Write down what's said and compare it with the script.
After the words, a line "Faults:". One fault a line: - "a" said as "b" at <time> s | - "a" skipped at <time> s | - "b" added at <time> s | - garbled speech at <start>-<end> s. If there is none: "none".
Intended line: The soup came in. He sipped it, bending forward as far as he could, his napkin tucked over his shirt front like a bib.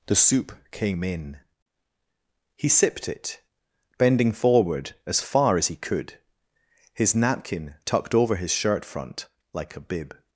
The soup came in. He sipped it, bending forward as far as he could, his napkin tucked over his shirt front like a bib.
Faults:
none